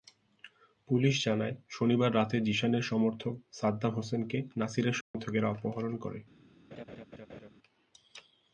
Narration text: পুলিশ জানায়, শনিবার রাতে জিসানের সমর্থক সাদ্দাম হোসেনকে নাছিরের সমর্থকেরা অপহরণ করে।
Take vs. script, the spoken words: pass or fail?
pass